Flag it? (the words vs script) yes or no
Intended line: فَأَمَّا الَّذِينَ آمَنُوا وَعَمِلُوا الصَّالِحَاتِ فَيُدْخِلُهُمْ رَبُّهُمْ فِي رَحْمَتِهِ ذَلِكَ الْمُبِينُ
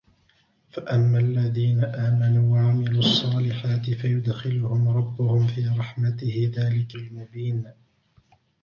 no